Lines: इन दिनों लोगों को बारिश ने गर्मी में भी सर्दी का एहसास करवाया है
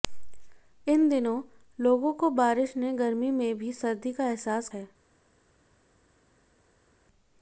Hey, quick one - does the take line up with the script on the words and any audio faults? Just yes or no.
no